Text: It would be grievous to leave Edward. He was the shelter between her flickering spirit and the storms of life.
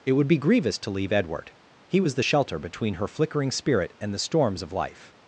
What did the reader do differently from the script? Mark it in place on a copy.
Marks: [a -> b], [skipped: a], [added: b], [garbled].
It would be grievous to leave Edward. He was the shelter between her flickering spirit and the storms of life.